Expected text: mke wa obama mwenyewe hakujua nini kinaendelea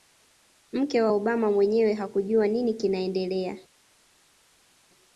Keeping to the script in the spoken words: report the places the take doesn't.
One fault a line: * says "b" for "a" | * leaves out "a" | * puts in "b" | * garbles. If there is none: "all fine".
all fine